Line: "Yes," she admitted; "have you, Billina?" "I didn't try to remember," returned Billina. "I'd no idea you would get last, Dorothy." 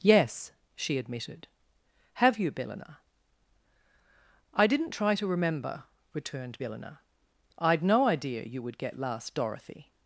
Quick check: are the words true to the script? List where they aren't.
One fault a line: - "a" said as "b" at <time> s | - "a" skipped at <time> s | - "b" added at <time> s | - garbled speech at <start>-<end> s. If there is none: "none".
none